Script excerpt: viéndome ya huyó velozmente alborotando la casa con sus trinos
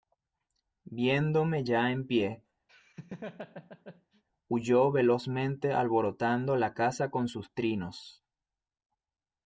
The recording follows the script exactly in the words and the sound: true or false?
false